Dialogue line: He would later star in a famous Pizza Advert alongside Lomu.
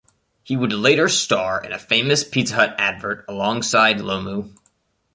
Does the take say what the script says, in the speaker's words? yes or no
no